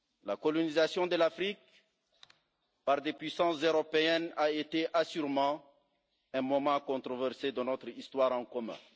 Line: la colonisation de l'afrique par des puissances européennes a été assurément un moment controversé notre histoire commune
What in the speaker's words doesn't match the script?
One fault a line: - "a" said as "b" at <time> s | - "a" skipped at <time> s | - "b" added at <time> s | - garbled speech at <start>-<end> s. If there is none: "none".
- "de" added at 7.5 s